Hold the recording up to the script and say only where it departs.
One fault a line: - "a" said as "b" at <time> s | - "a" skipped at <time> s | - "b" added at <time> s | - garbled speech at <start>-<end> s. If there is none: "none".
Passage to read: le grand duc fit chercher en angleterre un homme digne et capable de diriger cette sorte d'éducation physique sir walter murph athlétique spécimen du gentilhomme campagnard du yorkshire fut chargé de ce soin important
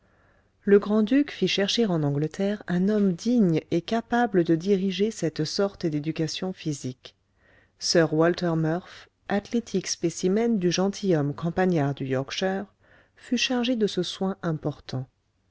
none